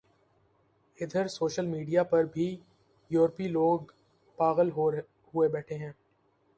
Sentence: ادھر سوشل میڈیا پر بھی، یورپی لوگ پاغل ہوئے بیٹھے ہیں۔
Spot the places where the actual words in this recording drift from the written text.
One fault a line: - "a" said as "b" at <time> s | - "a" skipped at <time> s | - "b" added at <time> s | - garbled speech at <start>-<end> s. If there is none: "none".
none